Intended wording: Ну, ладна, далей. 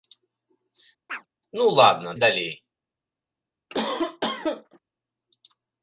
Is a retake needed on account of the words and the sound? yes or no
yes